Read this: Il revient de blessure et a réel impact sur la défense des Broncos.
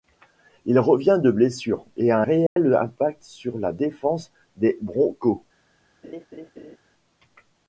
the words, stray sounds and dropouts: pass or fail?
fail